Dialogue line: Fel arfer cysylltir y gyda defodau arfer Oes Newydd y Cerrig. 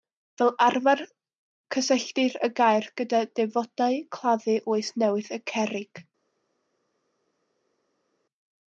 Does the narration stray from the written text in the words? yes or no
yes